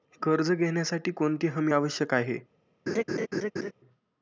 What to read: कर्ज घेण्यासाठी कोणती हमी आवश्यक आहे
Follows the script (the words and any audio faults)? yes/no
no